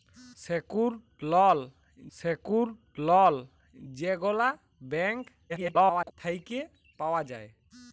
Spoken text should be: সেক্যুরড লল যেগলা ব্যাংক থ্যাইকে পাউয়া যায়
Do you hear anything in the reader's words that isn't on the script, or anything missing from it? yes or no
yes